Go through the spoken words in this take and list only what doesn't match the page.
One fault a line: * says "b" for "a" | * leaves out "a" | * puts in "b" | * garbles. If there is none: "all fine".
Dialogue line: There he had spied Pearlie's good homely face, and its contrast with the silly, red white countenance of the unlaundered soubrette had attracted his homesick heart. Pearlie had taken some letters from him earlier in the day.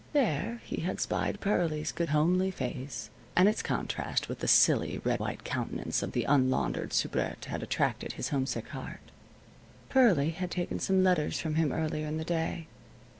all fine